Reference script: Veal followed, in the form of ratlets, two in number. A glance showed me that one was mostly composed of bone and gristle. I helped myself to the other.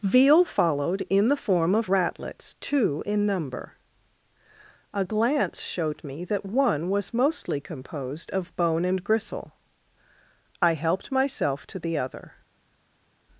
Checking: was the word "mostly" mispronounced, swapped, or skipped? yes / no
no